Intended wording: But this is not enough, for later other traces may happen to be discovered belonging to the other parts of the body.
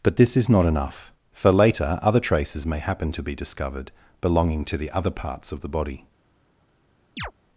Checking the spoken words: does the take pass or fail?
pass